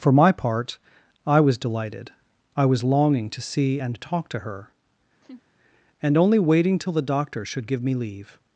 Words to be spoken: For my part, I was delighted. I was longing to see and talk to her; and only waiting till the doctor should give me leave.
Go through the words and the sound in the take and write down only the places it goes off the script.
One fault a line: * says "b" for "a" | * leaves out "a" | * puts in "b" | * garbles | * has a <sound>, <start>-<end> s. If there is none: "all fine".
* has a laugh, 5.2-5.4 s